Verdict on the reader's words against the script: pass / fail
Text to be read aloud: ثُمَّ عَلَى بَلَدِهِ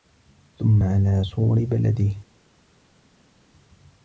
fail